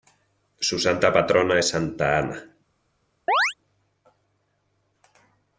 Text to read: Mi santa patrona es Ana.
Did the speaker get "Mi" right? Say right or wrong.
wrong